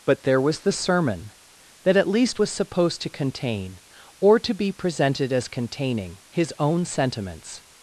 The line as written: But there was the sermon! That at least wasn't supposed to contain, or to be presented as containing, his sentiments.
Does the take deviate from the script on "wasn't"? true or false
true